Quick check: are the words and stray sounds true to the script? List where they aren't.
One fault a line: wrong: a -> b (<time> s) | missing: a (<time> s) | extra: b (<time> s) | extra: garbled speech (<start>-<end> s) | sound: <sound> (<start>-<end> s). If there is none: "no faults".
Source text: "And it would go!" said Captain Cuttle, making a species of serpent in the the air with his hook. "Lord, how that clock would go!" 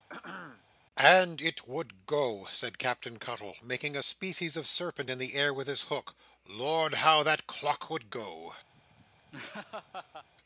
sound: throat clearing (0.1-0.6 s)
missing: the (5.3 s)
sound: laugh (8.7-10.3 s)